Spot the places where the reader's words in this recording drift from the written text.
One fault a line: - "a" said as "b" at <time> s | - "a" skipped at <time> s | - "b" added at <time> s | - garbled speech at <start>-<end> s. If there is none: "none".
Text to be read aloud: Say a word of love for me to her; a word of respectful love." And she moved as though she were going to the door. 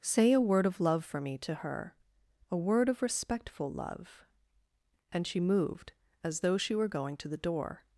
none